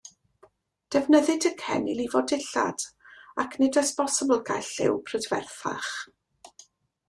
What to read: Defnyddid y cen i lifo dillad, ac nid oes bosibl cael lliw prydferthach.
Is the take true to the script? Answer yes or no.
yes